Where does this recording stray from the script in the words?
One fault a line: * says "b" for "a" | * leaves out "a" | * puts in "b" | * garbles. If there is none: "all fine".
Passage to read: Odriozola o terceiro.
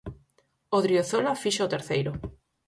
* puts in "fixo"